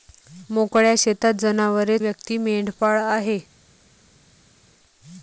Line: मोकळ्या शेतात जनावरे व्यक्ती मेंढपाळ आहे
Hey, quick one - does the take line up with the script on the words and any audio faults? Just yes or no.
yes